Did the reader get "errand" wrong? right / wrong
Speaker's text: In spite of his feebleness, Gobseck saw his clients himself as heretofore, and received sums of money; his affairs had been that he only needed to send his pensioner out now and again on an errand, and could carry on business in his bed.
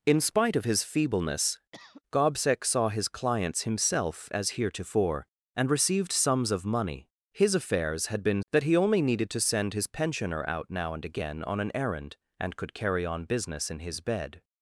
right